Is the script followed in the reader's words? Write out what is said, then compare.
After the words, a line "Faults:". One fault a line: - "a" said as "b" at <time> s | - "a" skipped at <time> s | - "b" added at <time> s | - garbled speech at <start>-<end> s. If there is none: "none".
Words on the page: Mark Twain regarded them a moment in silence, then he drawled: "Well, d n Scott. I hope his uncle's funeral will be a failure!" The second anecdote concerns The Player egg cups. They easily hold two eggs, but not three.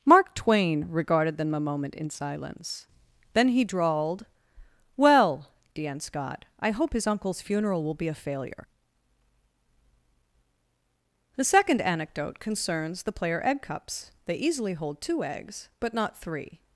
Mark Twain regarded them a moment in silence, then he drawled: "Well, d n Scott. I hope his uncle's funeral will be a failure!" The second anecdote concerns The Player egg cups. They easily hold two eggs, but not three.
Faults:
none